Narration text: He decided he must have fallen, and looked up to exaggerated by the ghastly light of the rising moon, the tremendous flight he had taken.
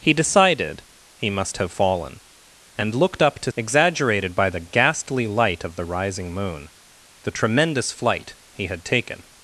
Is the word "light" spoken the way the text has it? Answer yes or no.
yes